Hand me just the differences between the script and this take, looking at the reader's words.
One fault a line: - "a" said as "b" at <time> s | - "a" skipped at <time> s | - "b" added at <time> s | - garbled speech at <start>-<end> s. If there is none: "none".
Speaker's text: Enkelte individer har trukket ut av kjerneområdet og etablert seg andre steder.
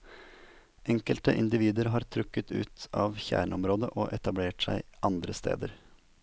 none